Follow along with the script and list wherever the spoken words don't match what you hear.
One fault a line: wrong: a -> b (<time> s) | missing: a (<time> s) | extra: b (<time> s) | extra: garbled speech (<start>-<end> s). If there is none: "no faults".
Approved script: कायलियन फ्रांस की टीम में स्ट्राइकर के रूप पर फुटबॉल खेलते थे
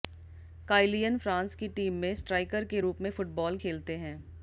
wrong: पर -> में (3.0 s)
wrong: थे -> हैं (4.0 s)